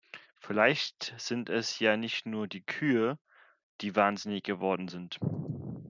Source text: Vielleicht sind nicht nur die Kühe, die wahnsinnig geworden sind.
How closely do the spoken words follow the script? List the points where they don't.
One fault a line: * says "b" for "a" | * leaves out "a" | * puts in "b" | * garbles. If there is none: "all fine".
* puts in "es ja"